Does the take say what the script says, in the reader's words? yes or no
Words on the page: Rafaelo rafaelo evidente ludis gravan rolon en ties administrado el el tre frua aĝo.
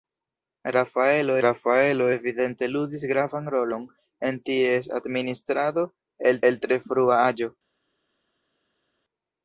yes